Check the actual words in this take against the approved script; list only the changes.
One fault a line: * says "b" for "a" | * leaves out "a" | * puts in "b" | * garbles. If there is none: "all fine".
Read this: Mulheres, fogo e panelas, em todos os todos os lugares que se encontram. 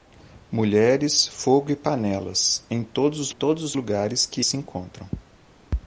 all fine